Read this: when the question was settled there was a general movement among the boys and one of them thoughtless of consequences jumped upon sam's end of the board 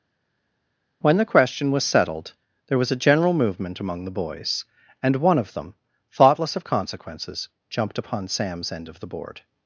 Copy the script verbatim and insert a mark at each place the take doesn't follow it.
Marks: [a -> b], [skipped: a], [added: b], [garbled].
when the question was settled there was a general movement among the boys and one of them thoughtless of consequences jumped upon sam's end of the board